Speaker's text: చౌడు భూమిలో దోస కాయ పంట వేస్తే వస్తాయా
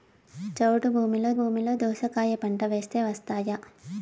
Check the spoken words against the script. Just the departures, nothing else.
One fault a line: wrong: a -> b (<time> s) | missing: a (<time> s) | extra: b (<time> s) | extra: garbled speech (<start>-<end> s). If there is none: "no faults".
extra: భూమిలో (1.3 s)